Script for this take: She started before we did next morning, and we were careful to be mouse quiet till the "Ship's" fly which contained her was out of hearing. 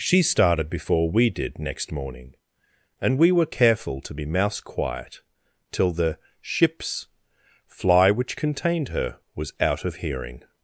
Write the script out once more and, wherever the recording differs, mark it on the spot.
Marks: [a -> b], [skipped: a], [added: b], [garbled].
She started before we did next morning, and we were careful to be mouse quiet till the "Ship's" fly which contained her was out of hearing.